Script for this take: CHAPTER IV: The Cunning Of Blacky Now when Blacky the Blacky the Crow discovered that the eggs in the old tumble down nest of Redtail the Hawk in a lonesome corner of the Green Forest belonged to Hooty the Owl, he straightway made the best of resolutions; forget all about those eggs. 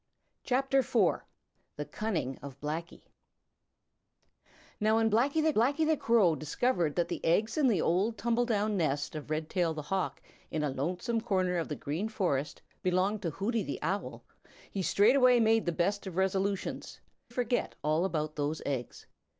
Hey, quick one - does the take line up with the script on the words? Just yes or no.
yes